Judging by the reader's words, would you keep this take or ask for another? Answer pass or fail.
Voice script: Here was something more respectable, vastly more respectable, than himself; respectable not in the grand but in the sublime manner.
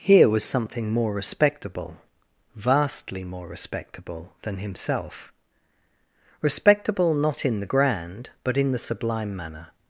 pass